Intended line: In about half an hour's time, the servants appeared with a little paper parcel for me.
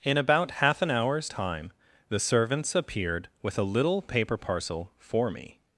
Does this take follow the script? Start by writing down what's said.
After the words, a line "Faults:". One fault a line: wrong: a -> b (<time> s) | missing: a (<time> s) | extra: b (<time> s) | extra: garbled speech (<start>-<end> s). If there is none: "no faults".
In about half an hour's time, the servants appeared with a little paper parcel for me.
Faults:
no faults